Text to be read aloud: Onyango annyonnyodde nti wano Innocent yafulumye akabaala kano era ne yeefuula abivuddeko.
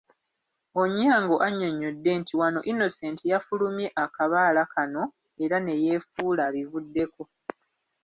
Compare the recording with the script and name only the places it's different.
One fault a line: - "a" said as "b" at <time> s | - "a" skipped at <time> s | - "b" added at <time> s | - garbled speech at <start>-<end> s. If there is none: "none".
none